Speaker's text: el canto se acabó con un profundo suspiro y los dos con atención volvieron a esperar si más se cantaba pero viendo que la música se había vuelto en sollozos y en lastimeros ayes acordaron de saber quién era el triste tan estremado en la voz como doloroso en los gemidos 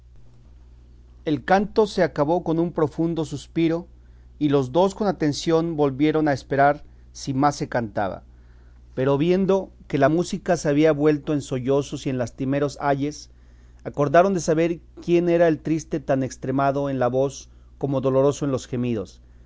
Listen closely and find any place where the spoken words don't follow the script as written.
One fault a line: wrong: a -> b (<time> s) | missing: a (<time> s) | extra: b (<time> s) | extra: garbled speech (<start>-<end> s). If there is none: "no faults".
no faults